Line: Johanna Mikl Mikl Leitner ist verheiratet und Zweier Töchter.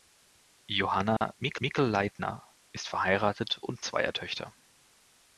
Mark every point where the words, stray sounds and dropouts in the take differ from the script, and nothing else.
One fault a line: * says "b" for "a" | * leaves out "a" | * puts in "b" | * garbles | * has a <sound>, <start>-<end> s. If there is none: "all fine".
* has a dropout, 1.2-1.2 s